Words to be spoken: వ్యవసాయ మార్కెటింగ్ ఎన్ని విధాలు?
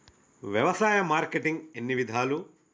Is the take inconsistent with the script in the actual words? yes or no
no